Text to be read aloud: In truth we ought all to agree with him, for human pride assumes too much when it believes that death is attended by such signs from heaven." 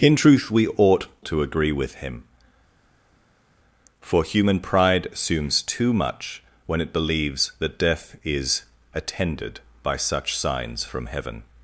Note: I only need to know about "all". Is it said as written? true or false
false